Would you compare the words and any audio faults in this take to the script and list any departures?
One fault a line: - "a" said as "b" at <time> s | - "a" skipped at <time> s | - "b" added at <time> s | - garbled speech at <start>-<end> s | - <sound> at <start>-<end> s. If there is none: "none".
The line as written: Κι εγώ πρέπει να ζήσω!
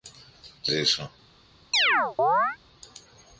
- "εγώ πρέπει να" skipped at 0.7 s
- chirp at 1.7-2.6 s